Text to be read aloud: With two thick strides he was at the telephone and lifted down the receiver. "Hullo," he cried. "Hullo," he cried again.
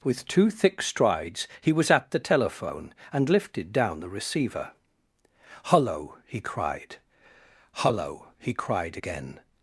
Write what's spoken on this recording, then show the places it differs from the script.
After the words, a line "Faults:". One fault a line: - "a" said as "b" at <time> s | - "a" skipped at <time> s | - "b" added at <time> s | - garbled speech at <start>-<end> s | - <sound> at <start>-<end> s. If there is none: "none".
With two thick strides he was at the telephone and lifted down the receiver. "Hullo," he cried. "Hullo," he cried again.
Faults:
none